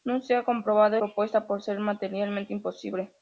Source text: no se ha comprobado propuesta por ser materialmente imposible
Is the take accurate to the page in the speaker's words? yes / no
yes